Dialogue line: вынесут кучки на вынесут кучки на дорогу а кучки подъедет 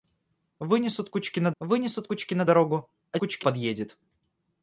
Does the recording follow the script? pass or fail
pass